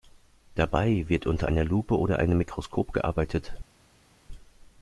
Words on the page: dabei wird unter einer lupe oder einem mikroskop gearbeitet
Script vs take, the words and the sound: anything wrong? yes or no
no